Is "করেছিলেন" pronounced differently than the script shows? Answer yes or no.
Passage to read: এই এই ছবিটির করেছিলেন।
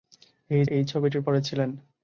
no